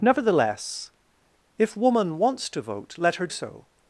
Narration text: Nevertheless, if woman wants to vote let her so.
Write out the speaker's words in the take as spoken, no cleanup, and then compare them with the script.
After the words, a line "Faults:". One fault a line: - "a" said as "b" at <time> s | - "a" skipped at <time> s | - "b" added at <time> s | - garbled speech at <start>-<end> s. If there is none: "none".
Nevertheless, if woman wants to vote let her so.
Faults:
none